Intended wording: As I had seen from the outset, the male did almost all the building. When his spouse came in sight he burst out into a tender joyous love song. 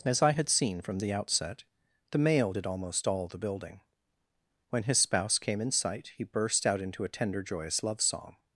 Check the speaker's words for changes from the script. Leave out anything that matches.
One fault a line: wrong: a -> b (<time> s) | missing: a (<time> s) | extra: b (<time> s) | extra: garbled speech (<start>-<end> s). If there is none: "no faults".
no faults